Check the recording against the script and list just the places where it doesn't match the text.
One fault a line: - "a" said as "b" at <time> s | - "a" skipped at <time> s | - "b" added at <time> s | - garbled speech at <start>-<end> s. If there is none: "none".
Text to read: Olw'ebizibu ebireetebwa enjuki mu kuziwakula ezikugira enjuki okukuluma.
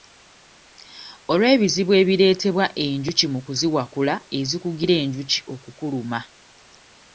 none